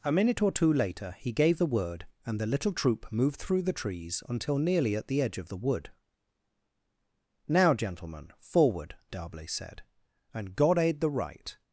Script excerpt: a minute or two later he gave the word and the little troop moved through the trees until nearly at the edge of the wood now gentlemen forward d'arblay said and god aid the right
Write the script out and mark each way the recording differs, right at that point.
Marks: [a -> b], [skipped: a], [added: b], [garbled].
a minute or two later he gave the word and the little troop moved through the trees until nearly at the edge of the wood now gentlemen forward d'arblay said and god aid the right